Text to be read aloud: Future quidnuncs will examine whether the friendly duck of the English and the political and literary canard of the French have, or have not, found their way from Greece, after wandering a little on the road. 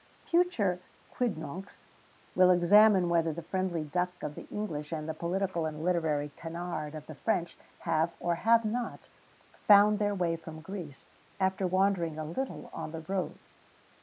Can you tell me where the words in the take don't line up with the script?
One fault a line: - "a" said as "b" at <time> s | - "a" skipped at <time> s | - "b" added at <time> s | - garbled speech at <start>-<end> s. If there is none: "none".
none